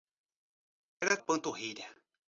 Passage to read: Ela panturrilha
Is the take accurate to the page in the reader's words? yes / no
yes